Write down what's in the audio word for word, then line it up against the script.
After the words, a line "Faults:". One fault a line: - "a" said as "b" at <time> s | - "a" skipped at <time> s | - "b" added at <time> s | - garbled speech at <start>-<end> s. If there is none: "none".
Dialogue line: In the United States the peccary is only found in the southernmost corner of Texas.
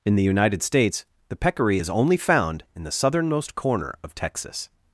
In the United States the peccary is only found in the southernmost corner of Texas.
Faults:
none